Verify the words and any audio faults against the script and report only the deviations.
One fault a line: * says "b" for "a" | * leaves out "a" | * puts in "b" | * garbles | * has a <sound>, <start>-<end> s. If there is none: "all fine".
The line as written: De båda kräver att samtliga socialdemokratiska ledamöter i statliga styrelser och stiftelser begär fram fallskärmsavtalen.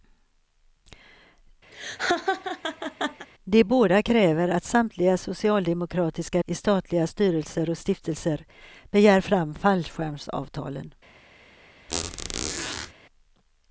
* has a laugh, 1.7-3.3 s
* leaves out "ledamöter"
* has a squeak, 11.9-12.9 s